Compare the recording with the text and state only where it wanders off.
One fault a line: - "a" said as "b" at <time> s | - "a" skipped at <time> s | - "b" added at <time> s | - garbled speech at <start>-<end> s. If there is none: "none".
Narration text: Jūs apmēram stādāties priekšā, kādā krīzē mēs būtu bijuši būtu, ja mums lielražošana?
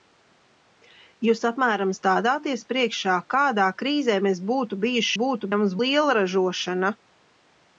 none